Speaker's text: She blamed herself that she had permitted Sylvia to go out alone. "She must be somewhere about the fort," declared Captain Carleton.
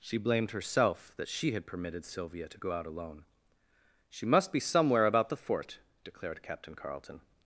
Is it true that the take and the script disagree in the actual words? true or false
false